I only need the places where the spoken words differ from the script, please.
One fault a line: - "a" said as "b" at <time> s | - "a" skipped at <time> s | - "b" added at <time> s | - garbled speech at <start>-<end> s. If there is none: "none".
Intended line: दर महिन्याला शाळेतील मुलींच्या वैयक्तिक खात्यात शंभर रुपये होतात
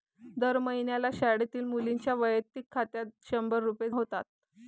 none